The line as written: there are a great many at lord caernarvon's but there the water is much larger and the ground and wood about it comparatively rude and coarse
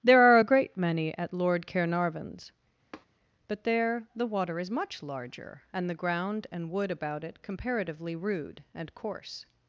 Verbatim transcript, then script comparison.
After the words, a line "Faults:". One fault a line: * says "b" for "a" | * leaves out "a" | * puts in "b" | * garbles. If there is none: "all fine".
there are a great many at lord caernarvon's but there the water is much larger and the ground and wood about it comparatively rude and coarse
Faults:
all fine